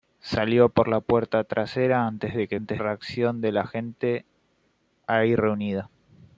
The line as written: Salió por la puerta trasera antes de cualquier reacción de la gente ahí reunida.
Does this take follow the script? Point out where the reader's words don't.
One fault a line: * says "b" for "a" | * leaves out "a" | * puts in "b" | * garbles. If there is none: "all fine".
* says "antes" for "cualquier"